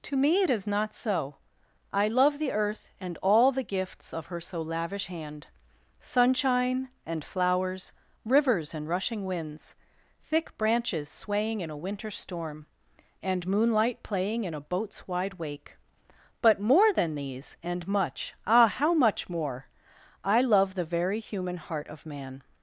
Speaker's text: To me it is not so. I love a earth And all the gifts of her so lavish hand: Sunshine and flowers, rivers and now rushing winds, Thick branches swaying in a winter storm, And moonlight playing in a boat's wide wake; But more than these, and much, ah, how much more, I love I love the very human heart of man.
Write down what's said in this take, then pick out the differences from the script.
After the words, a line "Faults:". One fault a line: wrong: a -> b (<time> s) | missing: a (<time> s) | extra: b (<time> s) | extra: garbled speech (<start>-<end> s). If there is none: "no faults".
To me it is not so. I love the earth And all the gifts of her so lavish hand: Sunshine and flowers, rivers and rushing winds, Thick branches swaying in a winter storm, And moonlight playing in a boat's wide wake; But more than these, and much, ah, how much more, I love the very human heart of man.
Faults:
wrong: a -> the (2.4 s)
missing: now (8.9 s)
missing: I love (20.7 s)